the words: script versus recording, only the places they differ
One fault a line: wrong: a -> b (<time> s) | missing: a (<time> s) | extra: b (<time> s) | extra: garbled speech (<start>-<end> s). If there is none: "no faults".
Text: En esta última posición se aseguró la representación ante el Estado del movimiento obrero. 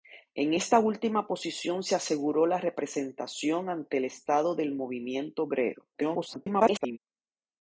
extra: garbled speech (5.9-7.0 s)